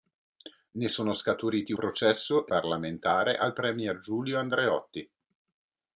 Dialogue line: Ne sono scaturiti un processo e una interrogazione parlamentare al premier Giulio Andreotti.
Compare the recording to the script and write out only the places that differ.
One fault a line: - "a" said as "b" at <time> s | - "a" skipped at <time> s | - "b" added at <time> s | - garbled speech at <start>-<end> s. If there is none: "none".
- "un" skipped at 1.7 s
- "una interrogazione" skipped at 2.5 s